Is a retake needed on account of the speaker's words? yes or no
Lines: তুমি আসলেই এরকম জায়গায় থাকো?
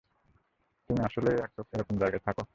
no